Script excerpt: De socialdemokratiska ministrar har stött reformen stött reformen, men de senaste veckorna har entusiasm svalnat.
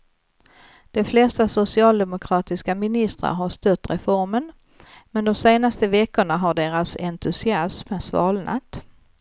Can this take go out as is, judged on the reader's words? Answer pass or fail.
fail